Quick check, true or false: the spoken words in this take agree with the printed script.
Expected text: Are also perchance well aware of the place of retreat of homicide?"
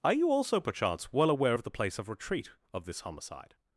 false